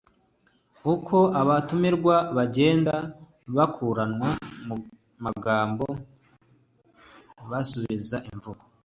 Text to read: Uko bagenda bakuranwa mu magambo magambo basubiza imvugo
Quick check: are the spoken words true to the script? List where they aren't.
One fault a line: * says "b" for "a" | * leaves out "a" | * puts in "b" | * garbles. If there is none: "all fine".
* puts in "abatumirwa"
* leaves out "magambo"